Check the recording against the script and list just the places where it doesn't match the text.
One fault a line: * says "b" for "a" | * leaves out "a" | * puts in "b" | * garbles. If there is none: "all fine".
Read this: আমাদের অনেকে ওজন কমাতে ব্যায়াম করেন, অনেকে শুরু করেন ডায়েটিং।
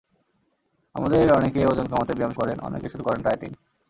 all fine